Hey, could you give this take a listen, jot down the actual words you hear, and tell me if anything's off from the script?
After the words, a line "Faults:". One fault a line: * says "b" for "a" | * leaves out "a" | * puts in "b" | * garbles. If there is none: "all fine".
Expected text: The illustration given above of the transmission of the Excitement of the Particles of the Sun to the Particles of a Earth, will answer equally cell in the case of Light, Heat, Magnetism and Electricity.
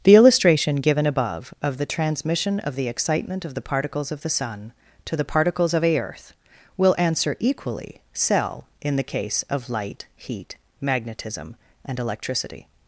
The illustration given above of the transmission of the Excitement of the Particles of the Sun to the Particles of a Earth, will answer equally cell in the case of Light, Heat, Magnetism and Electricity.
Faults:
all fine